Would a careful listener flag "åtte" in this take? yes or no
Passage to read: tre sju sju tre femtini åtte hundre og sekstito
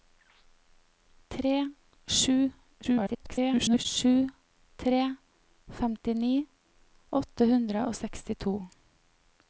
no